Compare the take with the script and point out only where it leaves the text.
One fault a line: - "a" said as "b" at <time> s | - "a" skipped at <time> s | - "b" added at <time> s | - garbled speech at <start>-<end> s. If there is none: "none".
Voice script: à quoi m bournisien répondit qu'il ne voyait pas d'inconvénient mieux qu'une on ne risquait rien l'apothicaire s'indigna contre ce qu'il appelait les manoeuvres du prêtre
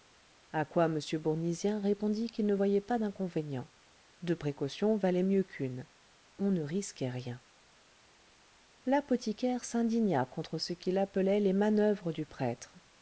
- "deux précautions valaient" added at 4.2 s